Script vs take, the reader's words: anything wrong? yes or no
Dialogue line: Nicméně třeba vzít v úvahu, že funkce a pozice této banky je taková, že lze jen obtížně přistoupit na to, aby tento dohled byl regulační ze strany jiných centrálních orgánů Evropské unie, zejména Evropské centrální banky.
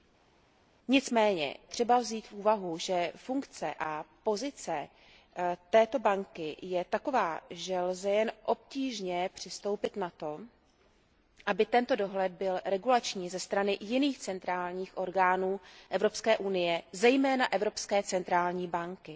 no